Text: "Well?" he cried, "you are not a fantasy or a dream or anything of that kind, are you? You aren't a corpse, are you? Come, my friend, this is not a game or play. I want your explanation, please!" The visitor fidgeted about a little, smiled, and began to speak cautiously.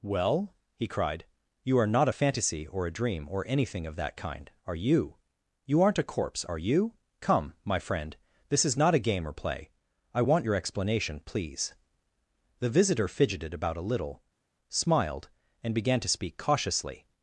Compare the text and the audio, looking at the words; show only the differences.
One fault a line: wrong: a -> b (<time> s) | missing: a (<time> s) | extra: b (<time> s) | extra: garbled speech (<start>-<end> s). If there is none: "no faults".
no faults